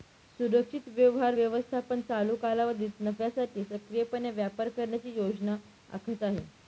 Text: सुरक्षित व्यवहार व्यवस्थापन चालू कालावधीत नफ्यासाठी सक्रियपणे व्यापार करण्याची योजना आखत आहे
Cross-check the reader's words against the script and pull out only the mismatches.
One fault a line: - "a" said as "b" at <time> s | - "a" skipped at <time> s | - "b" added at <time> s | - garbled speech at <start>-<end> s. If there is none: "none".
none